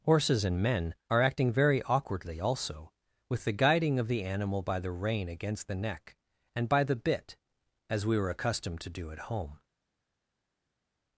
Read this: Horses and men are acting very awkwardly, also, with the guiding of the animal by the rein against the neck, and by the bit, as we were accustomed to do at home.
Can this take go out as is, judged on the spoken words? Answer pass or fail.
pass